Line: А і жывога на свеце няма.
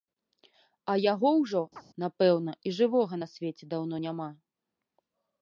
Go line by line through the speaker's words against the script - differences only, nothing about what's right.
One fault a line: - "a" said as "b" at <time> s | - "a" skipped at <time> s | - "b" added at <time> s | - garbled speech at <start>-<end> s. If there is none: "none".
- "яго ўжо напэўна" added at 1.1 s
- "даўно" added at 3.7 s